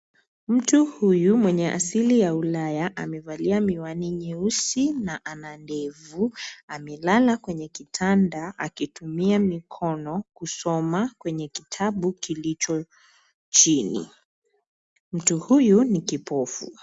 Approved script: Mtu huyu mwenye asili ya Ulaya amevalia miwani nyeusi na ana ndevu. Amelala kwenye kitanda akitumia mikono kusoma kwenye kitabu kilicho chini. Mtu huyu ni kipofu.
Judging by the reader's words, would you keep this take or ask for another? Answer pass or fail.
pass